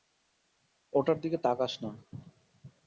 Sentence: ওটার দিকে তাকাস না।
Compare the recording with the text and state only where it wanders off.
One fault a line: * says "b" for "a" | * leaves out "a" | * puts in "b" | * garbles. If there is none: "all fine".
all fine